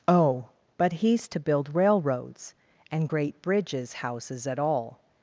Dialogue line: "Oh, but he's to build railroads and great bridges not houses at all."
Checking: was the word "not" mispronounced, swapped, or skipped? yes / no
yes